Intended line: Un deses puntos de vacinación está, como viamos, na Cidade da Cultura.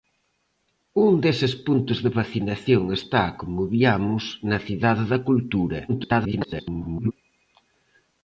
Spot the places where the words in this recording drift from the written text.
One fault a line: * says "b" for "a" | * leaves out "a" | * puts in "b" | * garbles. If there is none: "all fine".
* garbles